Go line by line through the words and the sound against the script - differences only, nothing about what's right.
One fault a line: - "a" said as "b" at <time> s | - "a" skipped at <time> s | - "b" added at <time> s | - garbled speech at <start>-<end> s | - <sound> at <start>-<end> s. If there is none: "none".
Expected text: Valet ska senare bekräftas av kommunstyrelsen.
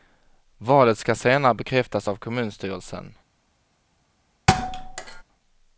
- thud at 4.5-5.2 s